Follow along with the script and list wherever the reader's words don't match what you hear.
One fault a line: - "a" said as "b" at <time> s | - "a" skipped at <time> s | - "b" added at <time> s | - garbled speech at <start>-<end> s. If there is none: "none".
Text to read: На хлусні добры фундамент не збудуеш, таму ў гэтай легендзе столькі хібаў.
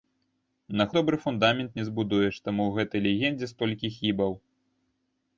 - "хлусні" skipped at 0.9 s